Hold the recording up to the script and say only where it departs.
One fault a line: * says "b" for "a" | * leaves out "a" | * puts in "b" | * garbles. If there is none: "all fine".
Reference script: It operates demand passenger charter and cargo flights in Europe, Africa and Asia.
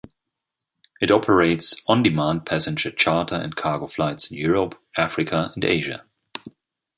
* puts in "on"